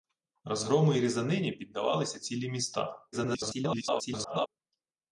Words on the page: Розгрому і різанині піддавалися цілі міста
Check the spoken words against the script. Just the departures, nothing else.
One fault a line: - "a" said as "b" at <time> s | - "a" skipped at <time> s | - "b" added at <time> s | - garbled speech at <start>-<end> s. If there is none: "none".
- garbled speech at 3.1-4.5 s